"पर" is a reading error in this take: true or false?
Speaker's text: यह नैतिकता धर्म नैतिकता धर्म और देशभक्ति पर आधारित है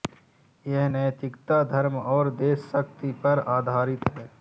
false